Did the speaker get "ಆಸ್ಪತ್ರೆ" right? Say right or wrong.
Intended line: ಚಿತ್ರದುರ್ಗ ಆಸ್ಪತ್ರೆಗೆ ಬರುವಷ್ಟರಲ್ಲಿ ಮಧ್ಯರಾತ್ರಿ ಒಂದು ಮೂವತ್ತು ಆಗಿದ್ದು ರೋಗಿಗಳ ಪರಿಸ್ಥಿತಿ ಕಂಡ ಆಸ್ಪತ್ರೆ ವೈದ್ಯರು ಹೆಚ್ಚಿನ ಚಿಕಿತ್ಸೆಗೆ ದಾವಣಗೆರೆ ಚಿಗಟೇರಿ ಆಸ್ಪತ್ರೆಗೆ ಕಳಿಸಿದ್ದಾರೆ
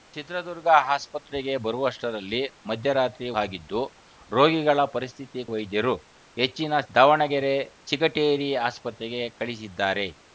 wrong